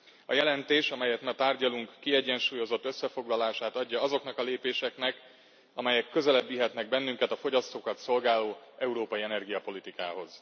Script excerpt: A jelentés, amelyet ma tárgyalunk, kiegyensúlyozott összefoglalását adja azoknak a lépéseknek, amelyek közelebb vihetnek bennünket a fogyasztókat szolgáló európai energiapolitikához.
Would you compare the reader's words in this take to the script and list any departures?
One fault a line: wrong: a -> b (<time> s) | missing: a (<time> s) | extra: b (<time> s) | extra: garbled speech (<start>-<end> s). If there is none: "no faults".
no faults